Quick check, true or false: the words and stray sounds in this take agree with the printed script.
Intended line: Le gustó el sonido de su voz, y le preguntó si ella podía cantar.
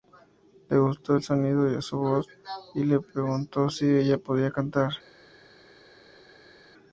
true